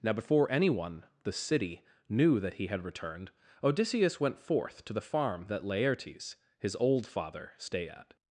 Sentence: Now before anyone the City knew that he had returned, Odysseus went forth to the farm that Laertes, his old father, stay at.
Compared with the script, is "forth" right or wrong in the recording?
right